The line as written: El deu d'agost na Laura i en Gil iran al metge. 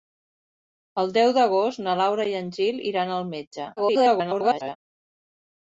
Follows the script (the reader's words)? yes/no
no